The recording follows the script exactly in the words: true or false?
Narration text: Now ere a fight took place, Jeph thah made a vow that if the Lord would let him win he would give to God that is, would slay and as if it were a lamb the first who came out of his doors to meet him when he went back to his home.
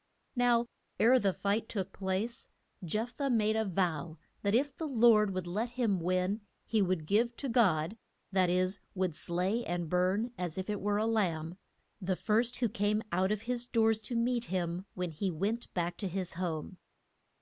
false